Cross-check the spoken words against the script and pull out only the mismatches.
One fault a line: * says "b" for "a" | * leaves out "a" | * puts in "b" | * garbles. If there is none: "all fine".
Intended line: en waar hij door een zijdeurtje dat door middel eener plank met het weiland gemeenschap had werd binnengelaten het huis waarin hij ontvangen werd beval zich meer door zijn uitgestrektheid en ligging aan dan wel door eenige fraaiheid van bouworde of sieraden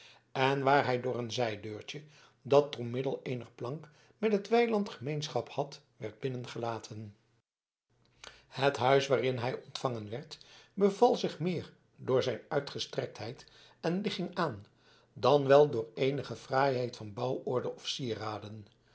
all fine